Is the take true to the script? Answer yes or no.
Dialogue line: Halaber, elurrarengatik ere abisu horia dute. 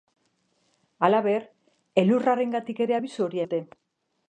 yes